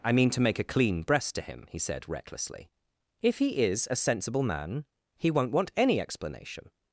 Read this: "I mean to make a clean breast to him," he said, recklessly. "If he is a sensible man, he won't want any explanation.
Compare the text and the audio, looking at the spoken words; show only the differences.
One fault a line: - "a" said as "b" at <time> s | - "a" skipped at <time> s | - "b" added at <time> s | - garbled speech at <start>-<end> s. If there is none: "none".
none